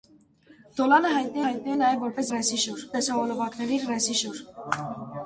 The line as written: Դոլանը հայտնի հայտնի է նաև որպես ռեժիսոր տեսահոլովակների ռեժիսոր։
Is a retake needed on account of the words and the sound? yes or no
no